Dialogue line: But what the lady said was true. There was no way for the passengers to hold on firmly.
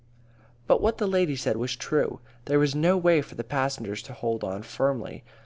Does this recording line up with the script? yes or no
yes